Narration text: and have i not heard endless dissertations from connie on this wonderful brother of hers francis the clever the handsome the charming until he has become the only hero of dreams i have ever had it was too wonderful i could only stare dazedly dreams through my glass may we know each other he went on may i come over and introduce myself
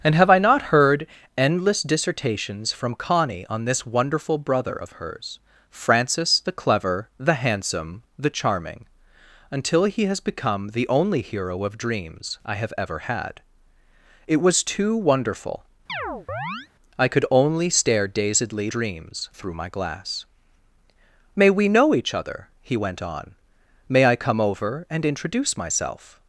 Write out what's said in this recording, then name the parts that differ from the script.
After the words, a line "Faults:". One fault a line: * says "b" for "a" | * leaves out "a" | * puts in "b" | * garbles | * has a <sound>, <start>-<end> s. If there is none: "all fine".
and have i not heard endless dissertations from connie on this wonderful brother of hers francis the clever the handsome the charming until he has become the only hero of dreams i have ever had it was too wonderful i could only stare dazedly dreams through my glass may we know each other he went on may i come over and introduce myself
Faults:
* has a chirp, 15.9-16.7 s